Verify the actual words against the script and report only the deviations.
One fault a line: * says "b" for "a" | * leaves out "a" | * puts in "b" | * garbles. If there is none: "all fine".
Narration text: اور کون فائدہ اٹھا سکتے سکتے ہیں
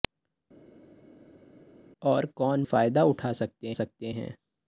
all fine